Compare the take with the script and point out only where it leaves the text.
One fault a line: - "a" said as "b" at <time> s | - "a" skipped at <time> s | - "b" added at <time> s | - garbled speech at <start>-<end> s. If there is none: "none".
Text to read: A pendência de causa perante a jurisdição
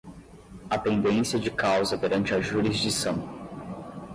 none